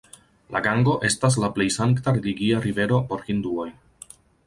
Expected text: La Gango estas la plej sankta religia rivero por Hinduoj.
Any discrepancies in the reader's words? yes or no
no